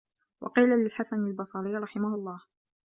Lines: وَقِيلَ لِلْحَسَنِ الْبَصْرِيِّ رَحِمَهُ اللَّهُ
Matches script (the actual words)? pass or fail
pass